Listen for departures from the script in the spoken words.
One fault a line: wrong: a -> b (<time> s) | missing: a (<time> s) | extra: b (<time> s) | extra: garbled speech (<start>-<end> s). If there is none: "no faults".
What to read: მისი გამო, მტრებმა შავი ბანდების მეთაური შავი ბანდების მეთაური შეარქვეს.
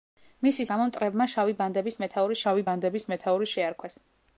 no faults